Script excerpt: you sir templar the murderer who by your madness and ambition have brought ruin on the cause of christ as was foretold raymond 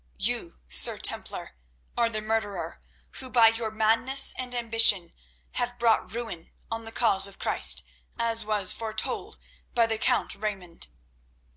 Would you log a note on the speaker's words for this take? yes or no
yes